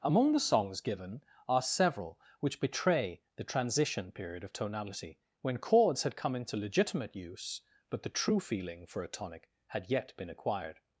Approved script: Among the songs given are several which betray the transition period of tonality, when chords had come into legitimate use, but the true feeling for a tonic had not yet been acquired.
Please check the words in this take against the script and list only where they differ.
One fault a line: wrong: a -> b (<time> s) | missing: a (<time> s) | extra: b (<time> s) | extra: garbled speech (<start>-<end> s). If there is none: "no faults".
missing: not (9.9 s)